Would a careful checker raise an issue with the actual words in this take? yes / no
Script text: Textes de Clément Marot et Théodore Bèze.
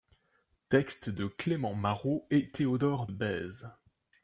no